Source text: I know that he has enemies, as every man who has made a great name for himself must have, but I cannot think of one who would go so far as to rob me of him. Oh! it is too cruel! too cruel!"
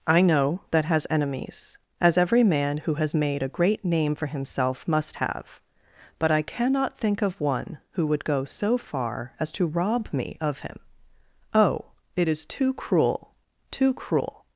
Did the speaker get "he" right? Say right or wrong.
wrong